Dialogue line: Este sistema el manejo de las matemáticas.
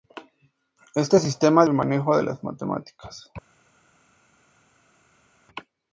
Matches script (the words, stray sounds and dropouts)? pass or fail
pass